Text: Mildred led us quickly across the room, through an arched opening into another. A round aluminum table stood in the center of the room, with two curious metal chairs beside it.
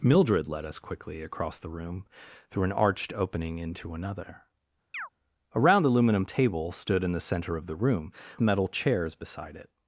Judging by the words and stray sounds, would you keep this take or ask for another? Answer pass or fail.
fail